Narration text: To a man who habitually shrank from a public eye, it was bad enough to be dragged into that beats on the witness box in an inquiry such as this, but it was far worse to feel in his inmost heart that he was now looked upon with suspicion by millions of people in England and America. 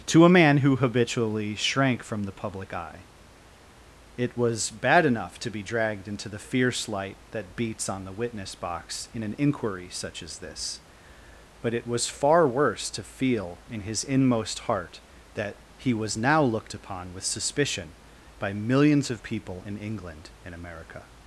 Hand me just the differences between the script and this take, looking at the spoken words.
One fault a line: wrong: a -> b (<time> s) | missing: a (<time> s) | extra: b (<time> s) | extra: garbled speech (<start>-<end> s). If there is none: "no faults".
wrong: a -> the (2.2 s)
extra: the fierce light (6.3 s)